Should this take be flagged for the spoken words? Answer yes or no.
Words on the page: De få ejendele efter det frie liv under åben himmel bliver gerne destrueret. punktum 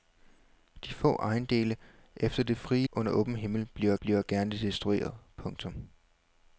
yes